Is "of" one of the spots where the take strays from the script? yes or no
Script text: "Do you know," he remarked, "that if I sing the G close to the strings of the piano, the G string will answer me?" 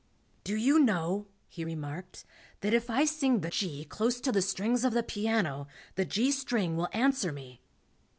no